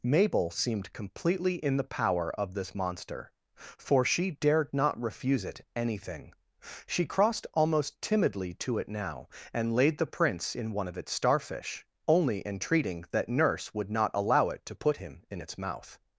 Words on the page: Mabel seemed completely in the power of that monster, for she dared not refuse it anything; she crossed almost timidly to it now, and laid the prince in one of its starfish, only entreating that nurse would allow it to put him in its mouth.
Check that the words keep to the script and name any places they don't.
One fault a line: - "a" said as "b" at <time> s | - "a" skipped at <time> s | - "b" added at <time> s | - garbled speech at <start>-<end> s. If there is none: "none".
- "that" said as "this" at 2.5 s
- "not" added at 13.9 s